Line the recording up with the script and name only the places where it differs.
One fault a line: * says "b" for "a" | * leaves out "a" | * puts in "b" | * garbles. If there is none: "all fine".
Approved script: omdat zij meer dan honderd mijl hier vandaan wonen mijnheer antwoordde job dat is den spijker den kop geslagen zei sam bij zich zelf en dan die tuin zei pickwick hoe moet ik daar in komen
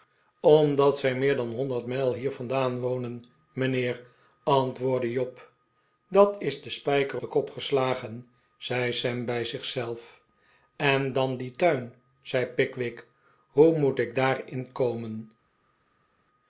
all fine